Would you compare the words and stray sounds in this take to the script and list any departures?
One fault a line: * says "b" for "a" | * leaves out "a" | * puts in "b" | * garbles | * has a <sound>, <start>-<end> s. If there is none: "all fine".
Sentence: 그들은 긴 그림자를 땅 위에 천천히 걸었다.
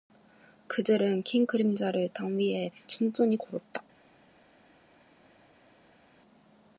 all fine